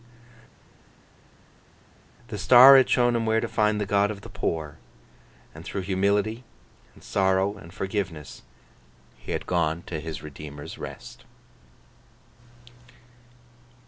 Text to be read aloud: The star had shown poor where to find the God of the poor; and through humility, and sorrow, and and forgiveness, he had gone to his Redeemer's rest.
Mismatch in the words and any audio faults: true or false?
true